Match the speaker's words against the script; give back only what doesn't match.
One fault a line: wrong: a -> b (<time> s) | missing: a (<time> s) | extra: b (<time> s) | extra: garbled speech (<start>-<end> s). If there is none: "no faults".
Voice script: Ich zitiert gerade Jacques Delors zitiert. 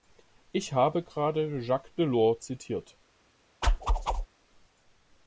wrong: zitiert -> habe (0.7 s)